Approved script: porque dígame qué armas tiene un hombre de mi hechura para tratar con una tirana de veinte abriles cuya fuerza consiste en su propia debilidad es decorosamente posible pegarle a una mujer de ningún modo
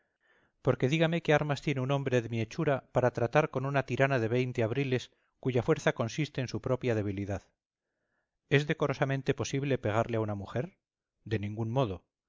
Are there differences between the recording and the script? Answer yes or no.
no